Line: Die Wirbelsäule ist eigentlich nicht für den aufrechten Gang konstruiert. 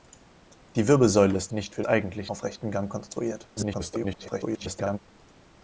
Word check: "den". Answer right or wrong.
wrong